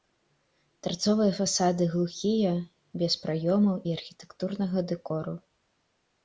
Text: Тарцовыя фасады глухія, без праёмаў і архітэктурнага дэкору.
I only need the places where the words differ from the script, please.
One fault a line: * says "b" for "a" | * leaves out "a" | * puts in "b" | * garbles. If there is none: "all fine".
all fine